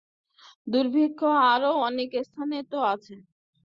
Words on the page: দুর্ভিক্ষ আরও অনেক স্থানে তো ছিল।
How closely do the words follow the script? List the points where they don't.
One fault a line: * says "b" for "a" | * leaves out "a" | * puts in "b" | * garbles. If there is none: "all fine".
* says "আছে" for "ছিল"